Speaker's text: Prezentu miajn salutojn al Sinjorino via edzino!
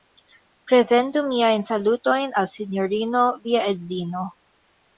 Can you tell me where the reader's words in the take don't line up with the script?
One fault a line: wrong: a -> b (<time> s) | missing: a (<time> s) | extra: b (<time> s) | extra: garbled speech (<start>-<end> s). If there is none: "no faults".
no faults